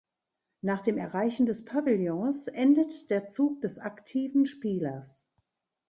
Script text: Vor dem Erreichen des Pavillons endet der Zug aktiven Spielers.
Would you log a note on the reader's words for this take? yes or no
yes